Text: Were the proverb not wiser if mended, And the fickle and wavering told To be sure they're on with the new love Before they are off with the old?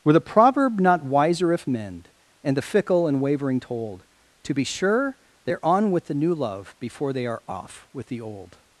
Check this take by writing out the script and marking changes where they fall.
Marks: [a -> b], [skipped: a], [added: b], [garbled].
Were the proverb not wiser if [mended, -> mend] And the fickle and wavering told To be sure they're on with the new love Before they are off with the old?